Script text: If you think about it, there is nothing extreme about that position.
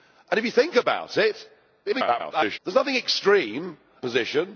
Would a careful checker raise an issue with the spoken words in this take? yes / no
yes